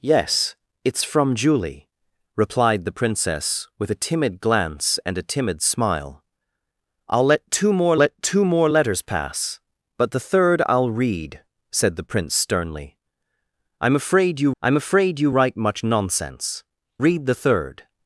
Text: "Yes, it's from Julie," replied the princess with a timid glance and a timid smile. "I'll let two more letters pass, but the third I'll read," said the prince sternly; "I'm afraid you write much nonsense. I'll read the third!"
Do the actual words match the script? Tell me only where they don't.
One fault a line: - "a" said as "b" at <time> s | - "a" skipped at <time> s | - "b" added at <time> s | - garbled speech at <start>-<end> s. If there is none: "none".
- "let two more" added at 8.0 s
- "I'm afraid you" added at 14.6 s
- "I'll" skipped at 16.6 s